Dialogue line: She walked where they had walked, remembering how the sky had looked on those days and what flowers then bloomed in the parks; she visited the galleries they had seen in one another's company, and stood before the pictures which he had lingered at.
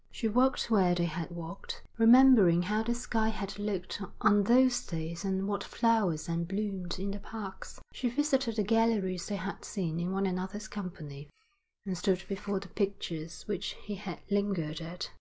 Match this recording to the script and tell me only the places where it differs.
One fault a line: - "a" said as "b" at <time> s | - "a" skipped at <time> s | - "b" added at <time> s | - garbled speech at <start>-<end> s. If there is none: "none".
none